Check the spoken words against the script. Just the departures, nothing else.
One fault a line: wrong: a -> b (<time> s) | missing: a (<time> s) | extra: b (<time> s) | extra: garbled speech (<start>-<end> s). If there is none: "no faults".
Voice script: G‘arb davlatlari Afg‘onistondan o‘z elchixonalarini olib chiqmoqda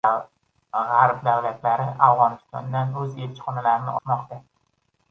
missing: olib (4.0 s)